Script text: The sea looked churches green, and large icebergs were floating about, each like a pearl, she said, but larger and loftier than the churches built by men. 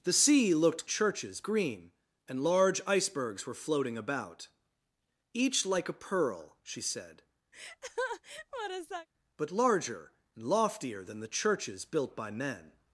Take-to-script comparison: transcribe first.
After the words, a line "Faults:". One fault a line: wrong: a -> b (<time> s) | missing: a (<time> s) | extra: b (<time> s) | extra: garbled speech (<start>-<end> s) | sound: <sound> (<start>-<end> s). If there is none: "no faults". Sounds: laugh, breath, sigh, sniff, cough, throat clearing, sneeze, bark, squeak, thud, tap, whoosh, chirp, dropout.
The sea looked churches green, and large icebergs were floating about, each like a pearl, she said, but larger and loftier than the churches built by men.
Faults:
sound: laugh (7.5-9.1 s)